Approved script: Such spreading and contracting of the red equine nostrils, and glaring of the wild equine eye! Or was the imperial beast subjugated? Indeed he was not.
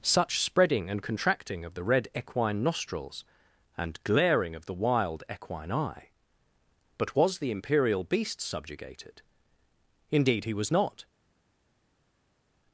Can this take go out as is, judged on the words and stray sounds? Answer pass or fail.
fail